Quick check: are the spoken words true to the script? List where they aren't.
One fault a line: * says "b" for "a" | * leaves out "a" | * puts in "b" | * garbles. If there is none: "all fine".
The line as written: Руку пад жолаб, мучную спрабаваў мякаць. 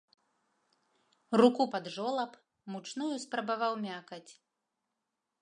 all fine